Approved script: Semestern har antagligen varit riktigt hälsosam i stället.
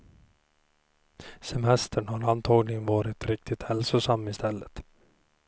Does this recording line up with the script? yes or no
yes